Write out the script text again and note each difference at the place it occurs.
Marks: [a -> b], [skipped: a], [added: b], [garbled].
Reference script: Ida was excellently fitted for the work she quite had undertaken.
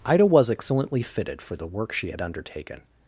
Ida was excellently fitted for the work she [skipped: quite] had undertaken.